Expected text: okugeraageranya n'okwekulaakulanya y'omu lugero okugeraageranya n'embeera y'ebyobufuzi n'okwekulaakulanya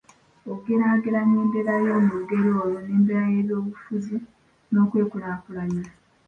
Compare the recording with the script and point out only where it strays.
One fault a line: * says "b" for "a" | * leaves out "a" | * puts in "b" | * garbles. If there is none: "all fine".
* says "embeera" for "n'okwekulaakulanya"
* says "olwo" for "okugeraageranya"